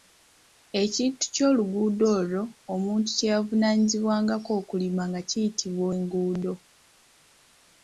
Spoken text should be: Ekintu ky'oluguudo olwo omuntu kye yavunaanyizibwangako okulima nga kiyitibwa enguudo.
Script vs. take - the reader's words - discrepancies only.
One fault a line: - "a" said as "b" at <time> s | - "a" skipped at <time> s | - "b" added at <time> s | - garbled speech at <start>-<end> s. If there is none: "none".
none